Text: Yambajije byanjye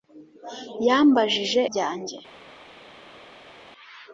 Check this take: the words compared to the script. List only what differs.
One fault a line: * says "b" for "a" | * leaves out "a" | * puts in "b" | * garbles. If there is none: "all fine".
all fine